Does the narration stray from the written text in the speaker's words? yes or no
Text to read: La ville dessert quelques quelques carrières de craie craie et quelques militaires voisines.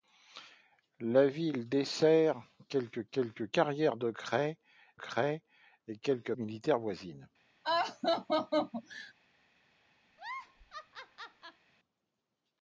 no